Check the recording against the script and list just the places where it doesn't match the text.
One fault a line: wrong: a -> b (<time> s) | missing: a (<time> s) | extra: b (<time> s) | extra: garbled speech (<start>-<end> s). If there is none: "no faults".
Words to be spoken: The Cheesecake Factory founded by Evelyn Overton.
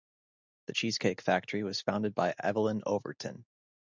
extra: was (1.6 s)